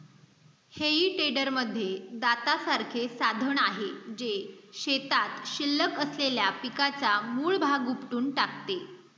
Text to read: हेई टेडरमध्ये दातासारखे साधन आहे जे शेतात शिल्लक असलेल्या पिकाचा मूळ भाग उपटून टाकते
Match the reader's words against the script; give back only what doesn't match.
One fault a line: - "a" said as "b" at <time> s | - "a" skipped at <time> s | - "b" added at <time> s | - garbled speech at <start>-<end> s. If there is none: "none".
none